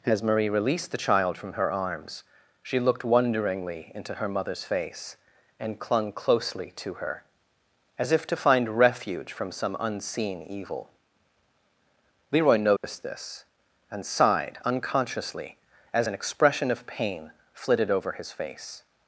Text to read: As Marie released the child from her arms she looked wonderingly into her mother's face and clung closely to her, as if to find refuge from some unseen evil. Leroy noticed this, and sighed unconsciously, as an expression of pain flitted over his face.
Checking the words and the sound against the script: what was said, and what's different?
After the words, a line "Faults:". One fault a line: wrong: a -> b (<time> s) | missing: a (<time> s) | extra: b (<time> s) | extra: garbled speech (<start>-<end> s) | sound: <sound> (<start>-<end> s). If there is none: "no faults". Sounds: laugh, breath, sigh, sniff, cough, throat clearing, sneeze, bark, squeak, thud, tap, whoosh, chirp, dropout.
As Marie released the child from her arms she looked wonderingly into her mother's face and clung closely to her, as if to find refuge from some unseen evil. Leroy noticed this, and sighed unconsciously, as an expression of pain flitted over his face.
Faults:
sound: dropout (12.8-12.8 s)